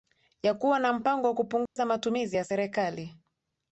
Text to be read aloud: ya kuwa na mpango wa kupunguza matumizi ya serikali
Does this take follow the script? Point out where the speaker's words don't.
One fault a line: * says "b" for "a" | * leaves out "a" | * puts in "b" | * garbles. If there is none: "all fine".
all fine